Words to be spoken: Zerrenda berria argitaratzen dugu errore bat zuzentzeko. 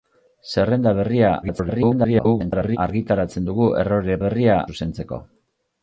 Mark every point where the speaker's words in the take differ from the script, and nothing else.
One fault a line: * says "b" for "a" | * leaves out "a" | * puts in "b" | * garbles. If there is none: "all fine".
* garbles
* says "berria" for "bat"